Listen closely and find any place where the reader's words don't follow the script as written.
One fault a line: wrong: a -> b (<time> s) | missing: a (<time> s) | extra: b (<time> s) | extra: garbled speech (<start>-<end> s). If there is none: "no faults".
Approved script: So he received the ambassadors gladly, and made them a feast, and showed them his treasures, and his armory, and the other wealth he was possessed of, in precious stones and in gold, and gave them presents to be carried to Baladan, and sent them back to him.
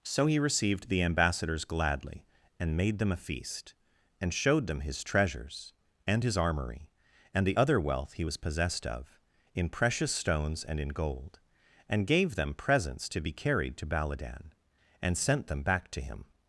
no faults